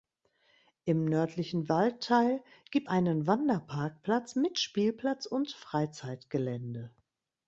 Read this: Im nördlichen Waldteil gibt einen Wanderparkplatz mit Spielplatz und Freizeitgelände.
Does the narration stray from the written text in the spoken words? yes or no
no